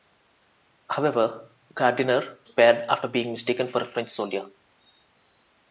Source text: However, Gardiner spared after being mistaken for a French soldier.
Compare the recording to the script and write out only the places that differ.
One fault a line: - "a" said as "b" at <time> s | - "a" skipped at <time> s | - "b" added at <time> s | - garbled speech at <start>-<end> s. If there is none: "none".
none